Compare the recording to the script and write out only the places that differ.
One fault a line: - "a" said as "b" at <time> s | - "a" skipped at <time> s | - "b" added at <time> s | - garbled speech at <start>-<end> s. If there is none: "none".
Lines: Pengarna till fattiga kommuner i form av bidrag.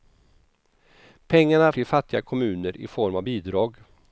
none